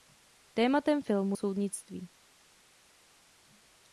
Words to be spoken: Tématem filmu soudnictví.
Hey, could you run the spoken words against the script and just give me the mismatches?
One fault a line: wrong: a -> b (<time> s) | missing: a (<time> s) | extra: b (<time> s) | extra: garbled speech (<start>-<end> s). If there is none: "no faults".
no faults